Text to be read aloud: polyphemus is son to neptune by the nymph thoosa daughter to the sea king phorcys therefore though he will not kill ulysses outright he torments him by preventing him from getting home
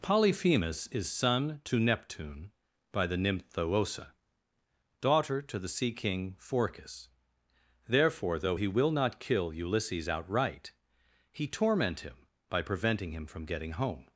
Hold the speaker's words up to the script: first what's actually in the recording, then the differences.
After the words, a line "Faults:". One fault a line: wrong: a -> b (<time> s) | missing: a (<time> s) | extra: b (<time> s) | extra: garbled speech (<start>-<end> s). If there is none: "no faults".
polyphemus is son to neptune by the nymph thoosa daughter to the sea king phorcys therefore though he will not kill ulysses outright he torment him by preventing him from getting home
Faults:
wrong: torments -> torment (11.5 s)